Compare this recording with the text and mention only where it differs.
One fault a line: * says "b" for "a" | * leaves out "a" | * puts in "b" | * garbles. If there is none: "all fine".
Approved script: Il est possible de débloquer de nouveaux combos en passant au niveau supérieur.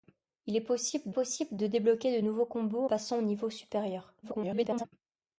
* puts in "possible"
* leaves out "en"
* garbles